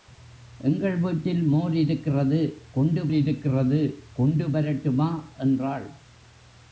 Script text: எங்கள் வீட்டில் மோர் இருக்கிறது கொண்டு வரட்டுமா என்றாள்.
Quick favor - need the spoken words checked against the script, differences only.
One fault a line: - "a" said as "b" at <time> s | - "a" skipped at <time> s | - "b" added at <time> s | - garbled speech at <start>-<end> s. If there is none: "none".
- "இருக்கிறது கொண்டு" added at 3.1 s